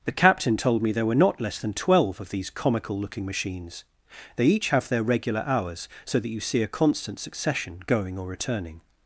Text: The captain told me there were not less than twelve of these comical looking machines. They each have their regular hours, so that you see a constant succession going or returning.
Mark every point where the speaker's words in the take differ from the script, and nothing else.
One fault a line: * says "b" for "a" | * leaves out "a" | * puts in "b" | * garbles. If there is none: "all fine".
all fine